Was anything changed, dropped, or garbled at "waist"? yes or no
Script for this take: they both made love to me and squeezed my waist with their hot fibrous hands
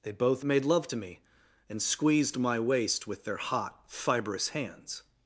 no